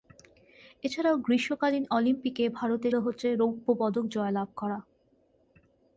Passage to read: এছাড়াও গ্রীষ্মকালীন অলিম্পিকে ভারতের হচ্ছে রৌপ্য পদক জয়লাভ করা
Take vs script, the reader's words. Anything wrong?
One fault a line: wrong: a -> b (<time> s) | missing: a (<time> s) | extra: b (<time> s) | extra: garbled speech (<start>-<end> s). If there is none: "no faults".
no faults